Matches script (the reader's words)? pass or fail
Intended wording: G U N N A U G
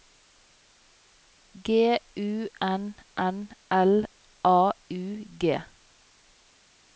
fail